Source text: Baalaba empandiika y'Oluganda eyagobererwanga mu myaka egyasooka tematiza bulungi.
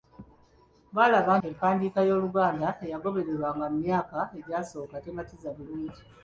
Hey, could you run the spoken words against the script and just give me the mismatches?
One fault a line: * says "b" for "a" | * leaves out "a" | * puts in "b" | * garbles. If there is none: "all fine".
all fine